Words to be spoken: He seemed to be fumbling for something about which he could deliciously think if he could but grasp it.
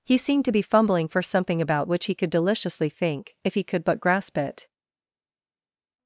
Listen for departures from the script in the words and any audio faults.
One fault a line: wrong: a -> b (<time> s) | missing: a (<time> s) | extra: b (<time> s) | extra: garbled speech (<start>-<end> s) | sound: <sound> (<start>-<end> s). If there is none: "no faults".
no faults